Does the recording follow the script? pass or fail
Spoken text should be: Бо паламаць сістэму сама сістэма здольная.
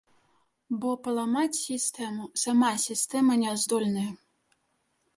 fail